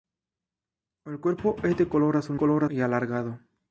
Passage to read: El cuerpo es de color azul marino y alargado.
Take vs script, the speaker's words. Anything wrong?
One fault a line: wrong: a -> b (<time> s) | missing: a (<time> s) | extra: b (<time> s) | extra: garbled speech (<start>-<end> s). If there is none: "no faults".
wrong: marino -> color (2.3 s)